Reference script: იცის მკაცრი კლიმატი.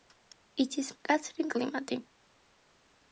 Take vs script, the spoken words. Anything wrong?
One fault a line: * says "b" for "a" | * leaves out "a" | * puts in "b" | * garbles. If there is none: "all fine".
all fine